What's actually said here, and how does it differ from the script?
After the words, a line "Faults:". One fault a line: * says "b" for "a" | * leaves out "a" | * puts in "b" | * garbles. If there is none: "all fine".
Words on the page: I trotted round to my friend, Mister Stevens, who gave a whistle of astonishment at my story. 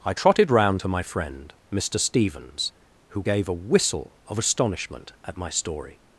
I trotted round to my friend, Mister Stevens, who gave a whistle of astonishment at my story.
Faults:
all fine